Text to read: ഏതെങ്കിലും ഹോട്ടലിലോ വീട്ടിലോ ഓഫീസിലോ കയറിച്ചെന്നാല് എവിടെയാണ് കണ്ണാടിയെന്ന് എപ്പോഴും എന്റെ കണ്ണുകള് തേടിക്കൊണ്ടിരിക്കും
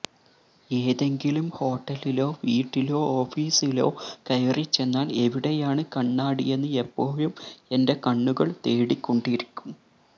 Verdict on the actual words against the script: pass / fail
pass